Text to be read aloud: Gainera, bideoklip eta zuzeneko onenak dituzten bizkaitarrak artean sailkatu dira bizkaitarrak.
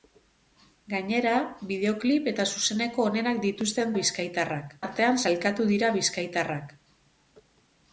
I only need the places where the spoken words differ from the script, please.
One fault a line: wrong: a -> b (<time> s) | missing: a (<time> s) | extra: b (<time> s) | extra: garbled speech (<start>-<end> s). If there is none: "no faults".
no faults